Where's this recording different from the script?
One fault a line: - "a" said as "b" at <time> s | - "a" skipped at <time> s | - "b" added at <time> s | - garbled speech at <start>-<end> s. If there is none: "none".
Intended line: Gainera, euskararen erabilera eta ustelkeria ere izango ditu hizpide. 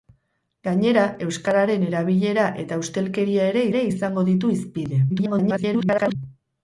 - "ere" added at 3.7 s
- garbled speech at 5.1-6.2 s